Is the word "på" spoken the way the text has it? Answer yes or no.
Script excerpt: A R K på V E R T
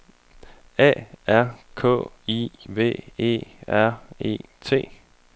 no